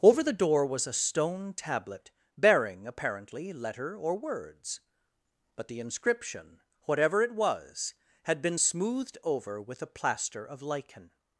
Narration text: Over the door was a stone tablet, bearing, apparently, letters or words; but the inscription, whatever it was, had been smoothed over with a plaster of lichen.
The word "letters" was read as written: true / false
false